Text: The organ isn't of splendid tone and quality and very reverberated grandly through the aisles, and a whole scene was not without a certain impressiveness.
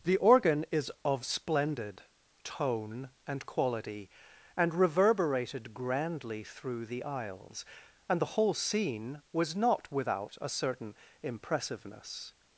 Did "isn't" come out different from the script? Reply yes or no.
yes